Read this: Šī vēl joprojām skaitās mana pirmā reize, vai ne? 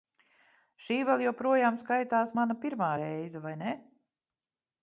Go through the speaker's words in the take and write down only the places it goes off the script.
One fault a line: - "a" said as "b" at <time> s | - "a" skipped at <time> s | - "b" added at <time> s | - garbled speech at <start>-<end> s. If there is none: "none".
none